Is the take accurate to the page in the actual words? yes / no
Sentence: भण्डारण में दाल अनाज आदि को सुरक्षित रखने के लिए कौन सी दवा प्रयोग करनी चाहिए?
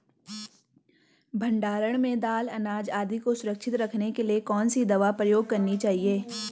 yes